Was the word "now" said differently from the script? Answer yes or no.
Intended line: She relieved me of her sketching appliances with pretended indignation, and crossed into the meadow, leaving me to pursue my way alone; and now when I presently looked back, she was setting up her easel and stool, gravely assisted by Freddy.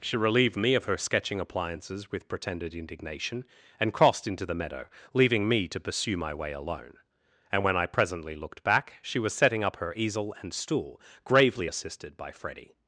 yes